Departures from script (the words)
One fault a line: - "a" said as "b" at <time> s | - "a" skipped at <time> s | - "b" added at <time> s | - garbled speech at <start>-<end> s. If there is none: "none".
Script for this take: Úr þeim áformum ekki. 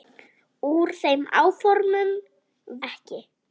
none